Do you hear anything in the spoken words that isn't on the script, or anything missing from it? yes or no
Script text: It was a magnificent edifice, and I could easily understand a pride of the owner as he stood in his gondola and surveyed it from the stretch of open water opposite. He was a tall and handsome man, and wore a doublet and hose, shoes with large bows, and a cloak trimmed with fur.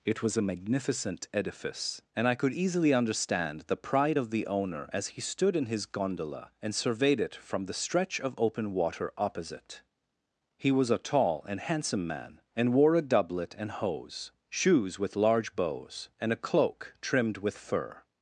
yes